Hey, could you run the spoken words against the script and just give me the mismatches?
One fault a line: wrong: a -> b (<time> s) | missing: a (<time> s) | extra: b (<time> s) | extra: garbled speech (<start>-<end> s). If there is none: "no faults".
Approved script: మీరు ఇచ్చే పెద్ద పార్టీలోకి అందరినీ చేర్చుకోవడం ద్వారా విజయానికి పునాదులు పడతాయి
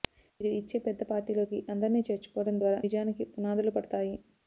no faults